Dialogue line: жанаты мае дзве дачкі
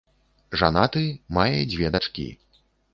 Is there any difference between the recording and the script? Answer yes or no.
no